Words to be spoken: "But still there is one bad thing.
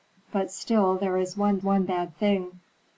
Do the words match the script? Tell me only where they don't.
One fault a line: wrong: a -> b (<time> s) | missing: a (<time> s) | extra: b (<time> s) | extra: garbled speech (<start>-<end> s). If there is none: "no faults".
extra: one (1.6 s)